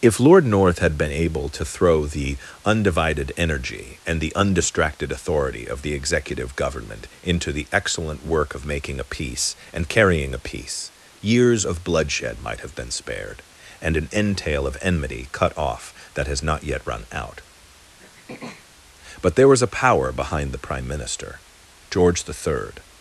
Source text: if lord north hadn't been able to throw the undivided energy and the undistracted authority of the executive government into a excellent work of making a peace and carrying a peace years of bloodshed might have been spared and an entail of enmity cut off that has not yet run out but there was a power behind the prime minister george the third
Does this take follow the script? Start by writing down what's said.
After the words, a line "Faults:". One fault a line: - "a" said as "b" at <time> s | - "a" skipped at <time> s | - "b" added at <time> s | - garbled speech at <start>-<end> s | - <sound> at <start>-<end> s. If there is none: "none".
if lord north had been able to throw the undivided energy and the undistracted authority of the executive government into the excellent work of making a peace and carrying a peace years of bloodshed might have been spared and an entail of enmity cut off that has not yet run out but there was a power behind the prime minister george the third
Faults:
- "hadn't" said as "had" at 0.8 s
- "a" said as "the" at 7.5 s
- throat clearing at 18.0-18.7 s